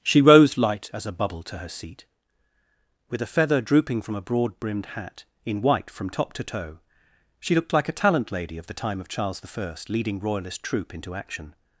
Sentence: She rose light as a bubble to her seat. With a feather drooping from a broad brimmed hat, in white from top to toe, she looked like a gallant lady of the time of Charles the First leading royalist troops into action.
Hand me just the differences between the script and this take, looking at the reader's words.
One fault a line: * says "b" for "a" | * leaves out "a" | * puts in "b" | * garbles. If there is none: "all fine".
* says "talent" for "gallant"
* says "troop" for "troops"